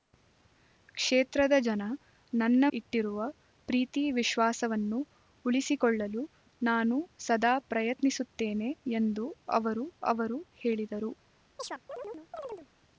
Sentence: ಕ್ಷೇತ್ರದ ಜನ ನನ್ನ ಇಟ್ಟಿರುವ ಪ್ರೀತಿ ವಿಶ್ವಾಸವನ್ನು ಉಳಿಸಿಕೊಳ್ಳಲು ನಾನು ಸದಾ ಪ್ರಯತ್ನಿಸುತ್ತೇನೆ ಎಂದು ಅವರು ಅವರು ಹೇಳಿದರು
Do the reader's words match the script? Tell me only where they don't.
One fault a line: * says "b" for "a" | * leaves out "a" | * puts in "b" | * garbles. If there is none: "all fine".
all fine